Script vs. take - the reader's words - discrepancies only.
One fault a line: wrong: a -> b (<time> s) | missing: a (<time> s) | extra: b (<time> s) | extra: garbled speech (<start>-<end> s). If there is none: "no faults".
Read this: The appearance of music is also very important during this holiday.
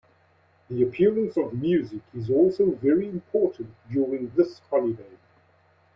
no faults